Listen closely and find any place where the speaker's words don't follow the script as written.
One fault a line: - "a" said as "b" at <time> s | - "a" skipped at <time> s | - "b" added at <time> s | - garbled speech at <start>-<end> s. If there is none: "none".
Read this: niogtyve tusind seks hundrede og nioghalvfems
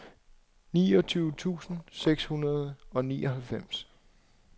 none